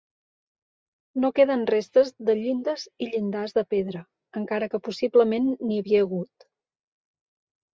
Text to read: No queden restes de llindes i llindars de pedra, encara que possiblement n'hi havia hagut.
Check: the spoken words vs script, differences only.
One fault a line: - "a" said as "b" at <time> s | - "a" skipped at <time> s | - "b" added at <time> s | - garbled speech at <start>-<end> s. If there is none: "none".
none